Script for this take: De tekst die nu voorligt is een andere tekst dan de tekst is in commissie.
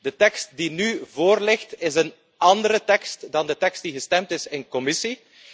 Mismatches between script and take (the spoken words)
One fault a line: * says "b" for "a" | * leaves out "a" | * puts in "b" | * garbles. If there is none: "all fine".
* puts in "die gestemd"